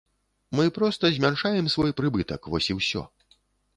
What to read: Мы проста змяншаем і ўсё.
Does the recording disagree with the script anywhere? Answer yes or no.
yes